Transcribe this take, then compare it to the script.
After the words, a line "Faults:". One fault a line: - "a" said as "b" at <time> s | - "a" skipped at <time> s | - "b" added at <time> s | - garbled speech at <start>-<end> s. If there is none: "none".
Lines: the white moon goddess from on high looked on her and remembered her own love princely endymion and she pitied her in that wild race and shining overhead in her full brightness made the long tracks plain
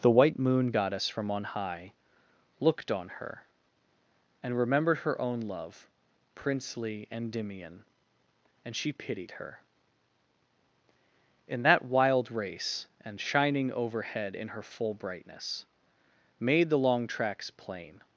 the white moon goddess from on high looked on her and remembered her own love princely endymion and she pitied her in that wild race and shining overhead in her full brightness made the long tracks plain
Faults:
none